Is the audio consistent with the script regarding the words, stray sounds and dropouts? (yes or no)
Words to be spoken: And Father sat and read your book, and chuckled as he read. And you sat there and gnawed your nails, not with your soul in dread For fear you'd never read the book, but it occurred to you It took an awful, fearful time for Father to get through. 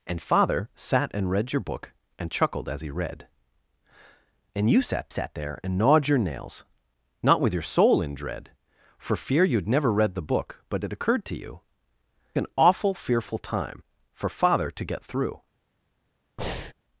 no